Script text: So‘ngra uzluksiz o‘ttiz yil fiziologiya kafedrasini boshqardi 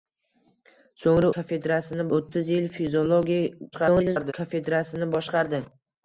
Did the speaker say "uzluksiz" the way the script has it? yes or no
no